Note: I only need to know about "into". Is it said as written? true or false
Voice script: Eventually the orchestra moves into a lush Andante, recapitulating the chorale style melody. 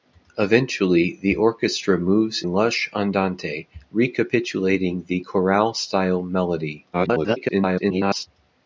false